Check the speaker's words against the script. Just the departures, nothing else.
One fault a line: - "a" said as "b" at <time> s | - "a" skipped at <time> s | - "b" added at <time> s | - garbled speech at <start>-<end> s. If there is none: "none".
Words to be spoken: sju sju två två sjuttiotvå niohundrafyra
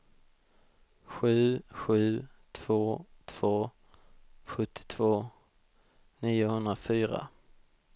none